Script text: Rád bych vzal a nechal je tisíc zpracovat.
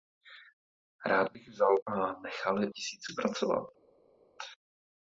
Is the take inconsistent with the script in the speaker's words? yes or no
no